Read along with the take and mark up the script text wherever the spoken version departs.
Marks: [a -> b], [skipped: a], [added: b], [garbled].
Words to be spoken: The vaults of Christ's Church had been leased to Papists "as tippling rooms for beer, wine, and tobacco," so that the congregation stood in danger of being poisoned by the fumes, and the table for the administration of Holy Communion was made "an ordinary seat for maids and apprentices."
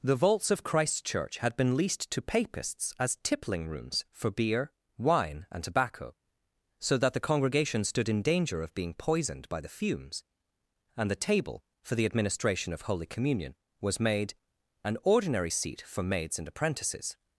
The vaults of Christ's Church had been leased to Papists "as tippling rooms for beer, wine, and tobacco," so that the congregation stood in danger of being poisoned by the fumes, and the table for the administration of Holy Communion was made "an ordinary seat for maids and apprentices."